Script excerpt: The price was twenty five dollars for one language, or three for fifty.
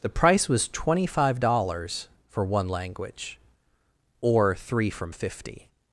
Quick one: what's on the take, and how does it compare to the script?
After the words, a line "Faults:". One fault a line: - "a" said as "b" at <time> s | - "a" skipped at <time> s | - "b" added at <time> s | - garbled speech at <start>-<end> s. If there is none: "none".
The price was twenty five dollars for one language, or three from fifty.
Faults:
- "for" said as "from" at 4.9 s